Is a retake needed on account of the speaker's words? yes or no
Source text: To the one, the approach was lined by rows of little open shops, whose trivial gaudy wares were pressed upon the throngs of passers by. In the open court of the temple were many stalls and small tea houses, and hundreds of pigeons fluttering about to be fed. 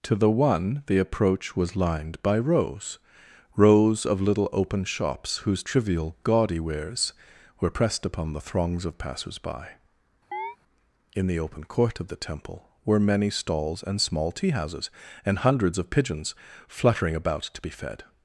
yes